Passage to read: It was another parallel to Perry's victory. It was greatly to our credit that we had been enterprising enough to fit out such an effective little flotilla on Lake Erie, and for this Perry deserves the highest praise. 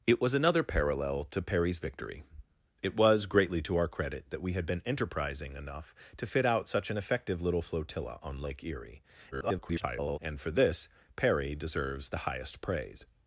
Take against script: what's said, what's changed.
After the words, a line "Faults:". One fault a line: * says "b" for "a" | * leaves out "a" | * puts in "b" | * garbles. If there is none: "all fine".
It was another parallel to Perry's victory. It was greatly to our credit that we had been enterprising enough to fit out such an effective little flotilla on Lake Erie, [garbled] and for this Perry deserves the highest praise.
Faults:
* garbles